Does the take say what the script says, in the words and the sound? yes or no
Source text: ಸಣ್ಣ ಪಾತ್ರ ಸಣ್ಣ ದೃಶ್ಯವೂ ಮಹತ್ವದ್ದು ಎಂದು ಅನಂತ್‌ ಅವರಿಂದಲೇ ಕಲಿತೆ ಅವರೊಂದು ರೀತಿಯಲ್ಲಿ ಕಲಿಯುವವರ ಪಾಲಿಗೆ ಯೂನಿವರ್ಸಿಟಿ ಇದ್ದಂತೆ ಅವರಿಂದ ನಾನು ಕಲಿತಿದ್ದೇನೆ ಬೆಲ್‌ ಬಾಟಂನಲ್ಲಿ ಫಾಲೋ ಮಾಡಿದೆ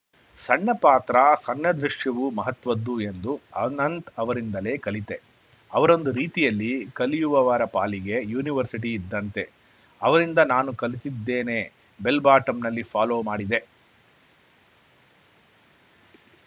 yes